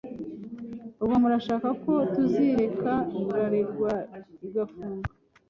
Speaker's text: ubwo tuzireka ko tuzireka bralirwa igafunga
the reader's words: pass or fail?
fail